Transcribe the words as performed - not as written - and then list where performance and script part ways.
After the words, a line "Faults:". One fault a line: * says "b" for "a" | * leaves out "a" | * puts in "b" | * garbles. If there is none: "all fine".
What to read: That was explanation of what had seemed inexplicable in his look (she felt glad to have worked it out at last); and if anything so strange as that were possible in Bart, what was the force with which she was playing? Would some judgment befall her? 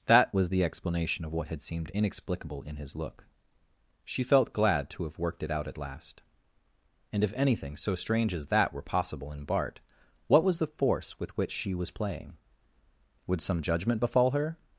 That was the explanation of what had seemed inexplicable in his look (she felt glad to have worked it out at last); and if anything so strange as that were possible in Bart, what was the force with which she was playing? Would some judgment befall her?
Faults:
* puts in "the"